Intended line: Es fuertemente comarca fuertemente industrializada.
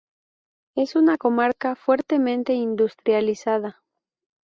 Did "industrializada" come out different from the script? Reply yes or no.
no